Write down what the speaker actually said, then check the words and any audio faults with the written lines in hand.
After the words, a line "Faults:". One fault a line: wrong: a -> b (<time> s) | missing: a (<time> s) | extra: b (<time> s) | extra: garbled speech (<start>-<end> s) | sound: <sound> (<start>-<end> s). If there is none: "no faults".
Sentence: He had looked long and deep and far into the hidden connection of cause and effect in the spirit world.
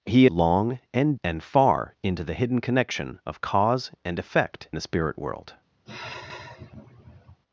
He long and and far into the hidden connection of cause and effect the spirit world.
Faults:
missing: had looked (0.2 s)
missing: deep (1.2 s)
missing: in (4.7 s)
sound: sigh (5.9-7.4 s)